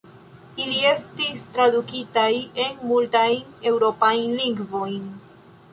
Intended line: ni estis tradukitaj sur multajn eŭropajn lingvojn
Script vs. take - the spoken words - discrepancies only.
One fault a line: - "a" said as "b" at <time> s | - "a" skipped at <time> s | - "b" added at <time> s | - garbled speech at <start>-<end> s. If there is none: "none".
- "ni" said as "ili" at 0.6 s
- "sur" said as "en" at 2.6 s